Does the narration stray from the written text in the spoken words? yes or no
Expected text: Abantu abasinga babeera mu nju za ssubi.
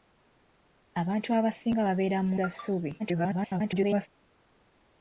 yes